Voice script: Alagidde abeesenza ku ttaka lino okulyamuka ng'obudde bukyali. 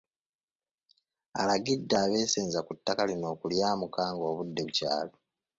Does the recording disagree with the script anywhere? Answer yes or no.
no